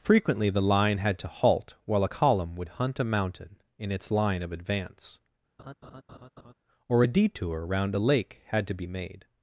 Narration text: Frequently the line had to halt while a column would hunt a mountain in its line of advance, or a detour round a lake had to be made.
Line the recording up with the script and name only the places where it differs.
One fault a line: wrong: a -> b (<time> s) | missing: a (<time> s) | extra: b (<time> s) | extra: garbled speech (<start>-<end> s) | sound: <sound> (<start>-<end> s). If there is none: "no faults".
sound: laugh (5.6-6.5 s)